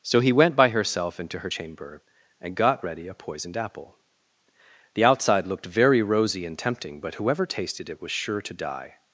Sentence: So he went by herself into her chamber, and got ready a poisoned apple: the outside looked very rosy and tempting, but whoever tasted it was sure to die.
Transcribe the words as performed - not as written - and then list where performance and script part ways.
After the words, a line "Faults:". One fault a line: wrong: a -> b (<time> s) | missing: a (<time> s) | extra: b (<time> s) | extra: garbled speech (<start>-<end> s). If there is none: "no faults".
So he went by herself into her chamber, and got ready a poisoned apple: the outside looked very rosy and tempting, but whoever tasted it was sure to die.
Faults:
no faults